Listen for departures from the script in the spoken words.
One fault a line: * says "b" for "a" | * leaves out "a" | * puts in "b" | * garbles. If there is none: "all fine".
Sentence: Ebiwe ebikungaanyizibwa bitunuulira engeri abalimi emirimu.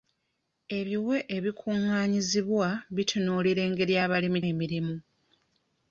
all fine